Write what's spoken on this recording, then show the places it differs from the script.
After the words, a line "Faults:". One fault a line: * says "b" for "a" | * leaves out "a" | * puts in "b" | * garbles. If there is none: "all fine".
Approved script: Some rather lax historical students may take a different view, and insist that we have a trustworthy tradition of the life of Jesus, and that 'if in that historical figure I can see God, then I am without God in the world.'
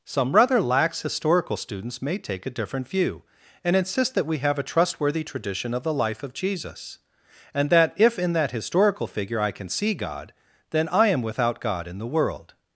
Some rather lax historical students may take a different view, and insist that we have a trustworthy tradition of the life of Jesus, and that 'if in that historical figure I can see God, then I am without God in the world.'
Faults:
all fine